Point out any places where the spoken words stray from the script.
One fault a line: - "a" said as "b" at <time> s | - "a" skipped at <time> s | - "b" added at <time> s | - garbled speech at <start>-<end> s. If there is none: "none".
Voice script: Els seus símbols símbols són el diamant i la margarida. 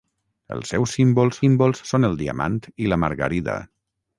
none